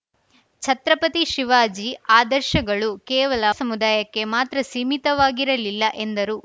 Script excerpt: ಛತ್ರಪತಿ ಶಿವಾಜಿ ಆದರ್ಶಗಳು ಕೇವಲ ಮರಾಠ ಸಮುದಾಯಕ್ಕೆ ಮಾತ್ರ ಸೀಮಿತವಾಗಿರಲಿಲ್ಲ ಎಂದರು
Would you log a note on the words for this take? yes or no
yes